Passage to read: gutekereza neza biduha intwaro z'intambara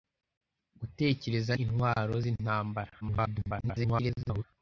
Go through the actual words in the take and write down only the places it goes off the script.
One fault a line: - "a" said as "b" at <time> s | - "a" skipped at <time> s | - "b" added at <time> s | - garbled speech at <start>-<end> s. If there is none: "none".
- "neza biduha" skipped at 1.5 s
- garbled speech at 3.0-4.4 s